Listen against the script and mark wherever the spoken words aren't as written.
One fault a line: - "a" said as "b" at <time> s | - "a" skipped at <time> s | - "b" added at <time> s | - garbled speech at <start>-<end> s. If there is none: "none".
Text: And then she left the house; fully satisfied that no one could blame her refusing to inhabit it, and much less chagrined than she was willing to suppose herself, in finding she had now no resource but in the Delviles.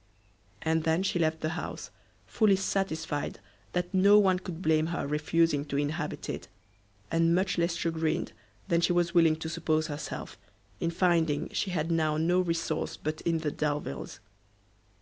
none